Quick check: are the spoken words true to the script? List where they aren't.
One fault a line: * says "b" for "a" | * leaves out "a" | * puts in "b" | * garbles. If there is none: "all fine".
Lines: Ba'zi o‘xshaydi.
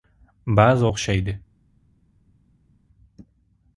all fine